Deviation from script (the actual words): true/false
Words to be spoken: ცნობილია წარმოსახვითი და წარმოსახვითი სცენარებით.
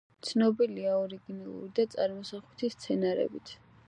true